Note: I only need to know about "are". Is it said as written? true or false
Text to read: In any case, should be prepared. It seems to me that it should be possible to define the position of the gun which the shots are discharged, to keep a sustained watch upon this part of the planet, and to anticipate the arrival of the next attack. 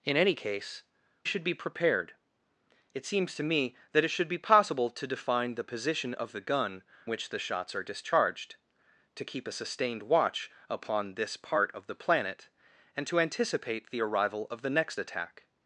true